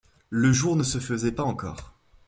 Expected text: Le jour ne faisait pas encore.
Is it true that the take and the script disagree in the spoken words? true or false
true